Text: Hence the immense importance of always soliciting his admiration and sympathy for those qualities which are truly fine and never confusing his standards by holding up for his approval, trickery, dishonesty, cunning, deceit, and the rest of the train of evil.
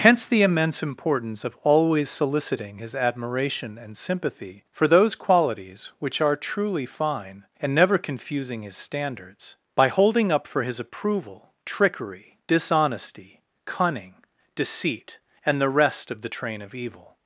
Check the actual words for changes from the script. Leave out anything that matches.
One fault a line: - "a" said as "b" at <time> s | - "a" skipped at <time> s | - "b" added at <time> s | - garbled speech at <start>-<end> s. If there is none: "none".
none